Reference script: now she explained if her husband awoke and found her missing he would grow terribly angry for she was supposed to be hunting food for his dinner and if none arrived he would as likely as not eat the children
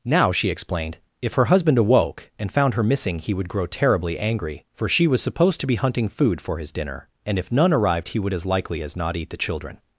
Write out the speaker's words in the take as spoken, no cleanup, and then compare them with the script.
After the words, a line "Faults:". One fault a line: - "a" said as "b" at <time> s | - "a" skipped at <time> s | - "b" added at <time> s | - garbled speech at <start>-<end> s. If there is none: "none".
now she explained if her husband awoke and found her missing he would grow terribly angry for she was supposed to be hunting food for his dinner and if none arrived he would as likely as not eat the children
Faults:
none